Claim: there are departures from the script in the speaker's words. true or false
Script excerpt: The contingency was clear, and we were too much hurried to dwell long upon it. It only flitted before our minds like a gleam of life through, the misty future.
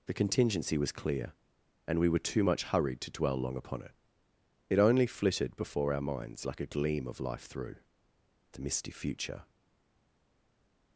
false